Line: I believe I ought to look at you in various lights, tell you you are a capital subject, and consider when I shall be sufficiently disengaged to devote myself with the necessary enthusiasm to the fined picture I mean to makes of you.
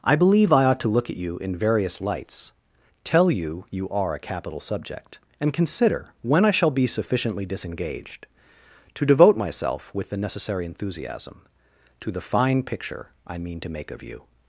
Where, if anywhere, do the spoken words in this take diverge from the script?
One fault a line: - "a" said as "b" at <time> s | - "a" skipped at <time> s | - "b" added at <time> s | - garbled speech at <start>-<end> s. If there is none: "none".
- "fined" said as "fine" at 12.2 s
- "makes" said as "make" at 13.7 s